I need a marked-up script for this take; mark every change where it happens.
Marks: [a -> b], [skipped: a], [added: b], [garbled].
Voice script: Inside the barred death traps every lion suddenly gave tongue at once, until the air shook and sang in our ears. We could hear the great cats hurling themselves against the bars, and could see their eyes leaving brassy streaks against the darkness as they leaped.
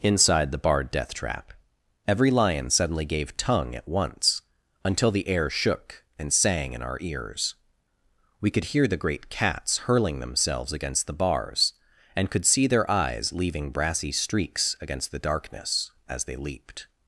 Inside the barred death [traps -> trap] every lion suddenly gave tongue at once, until the air shook and sang in our ears. We could hear the great cats hurling themselves against the bars, and could see their eyes leaving brassy streaks against the darkness as they leaped.